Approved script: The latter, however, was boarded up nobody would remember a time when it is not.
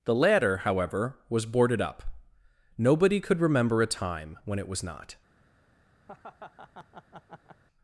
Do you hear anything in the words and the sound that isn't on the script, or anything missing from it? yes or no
yes